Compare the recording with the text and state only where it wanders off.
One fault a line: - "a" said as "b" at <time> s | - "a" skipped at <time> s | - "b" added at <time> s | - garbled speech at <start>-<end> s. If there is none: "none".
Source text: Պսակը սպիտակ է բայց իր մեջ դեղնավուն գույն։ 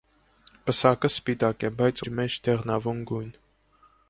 none